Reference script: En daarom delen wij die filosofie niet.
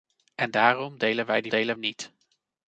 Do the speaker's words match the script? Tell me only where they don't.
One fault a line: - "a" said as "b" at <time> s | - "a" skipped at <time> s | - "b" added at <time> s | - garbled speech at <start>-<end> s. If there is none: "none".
- "filosofie" said as "delen" at 1.5 s